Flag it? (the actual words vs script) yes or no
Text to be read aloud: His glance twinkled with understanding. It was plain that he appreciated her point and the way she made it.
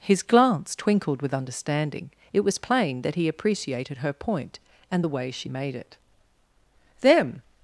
yes